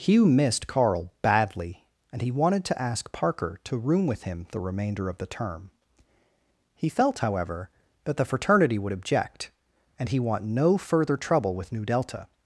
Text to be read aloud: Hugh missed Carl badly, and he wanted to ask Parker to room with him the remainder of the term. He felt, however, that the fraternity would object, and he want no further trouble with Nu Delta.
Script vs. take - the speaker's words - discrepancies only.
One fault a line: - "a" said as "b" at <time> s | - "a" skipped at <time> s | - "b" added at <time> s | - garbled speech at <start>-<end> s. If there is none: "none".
none